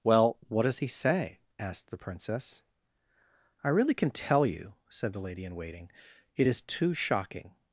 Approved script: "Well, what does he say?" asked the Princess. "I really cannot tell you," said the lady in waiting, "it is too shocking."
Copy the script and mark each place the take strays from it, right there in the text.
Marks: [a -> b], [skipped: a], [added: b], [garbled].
"Well, what does he say?" asked the Princess. "I really [cannot -> can] tell you," said the lady in waiting, "it is too shocking."